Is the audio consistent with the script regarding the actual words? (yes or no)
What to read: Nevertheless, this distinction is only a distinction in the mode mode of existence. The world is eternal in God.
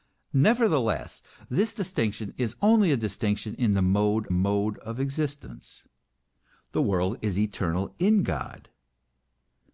yes